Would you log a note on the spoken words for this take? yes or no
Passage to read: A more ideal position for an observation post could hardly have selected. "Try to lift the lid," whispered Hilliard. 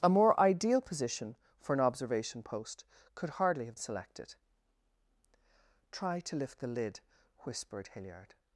no